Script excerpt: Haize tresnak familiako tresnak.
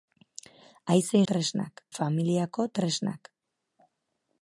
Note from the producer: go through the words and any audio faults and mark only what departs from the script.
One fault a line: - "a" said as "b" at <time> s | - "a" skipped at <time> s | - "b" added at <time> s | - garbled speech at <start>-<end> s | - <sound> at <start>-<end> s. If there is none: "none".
none